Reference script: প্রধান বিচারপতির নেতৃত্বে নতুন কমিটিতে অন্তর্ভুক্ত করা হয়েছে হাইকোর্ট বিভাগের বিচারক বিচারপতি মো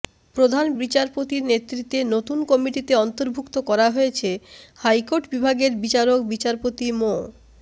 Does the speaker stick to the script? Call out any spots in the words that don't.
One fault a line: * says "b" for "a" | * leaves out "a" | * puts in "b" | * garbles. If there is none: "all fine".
all fine